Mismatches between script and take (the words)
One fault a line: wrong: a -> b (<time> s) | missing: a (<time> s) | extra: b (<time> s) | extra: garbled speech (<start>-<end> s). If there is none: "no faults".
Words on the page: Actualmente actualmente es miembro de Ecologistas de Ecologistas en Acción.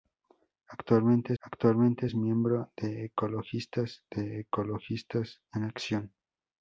no faults